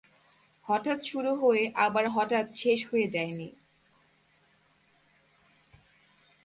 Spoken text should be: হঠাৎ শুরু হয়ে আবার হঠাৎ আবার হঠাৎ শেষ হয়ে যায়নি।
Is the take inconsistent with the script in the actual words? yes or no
yes